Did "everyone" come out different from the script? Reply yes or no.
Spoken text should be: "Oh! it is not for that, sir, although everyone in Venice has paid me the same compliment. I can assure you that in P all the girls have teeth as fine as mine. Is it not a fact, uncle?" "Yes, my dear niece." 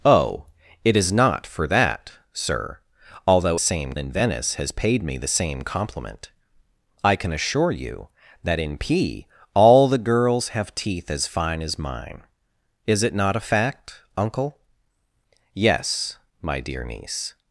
yes